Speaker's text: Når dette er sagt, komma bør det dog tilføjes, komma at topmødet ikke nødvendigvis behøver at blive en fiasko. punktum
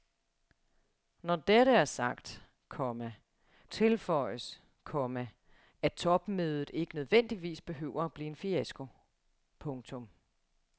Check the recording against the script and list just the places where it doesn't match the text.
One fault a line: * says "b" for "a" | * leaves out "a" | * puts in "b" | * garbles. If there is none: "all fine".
* leaves out "bør det dog"